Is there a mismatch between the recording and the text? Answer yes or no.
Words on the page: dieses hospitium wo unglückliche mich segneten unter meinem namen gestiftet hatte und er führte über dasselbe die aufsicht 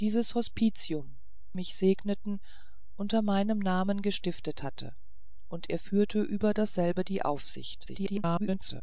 yes